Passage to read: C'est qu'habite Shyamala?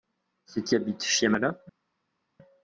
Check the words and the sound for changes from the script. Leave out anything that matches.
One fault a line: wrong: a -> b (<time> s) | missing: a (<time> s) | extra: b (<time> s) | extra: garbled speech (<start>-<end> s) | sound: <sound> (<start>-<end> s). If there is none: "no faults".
no faults